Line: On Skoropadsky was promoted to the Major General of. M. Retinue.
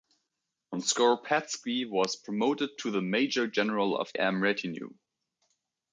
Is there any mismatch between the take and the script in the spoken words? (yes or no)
no